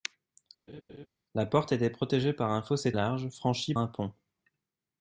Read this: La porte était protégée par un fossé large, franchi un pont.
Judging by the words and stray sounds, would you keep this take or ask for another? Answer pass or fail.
fail